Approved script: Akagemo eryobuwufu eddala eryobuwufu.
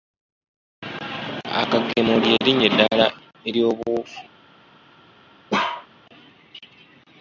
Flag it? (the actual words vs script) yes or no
yes